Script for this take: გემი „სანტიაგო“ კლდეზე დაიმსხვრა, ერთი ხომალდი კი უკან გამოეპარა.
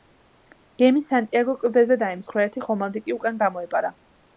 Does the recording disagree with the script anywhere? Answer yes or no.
no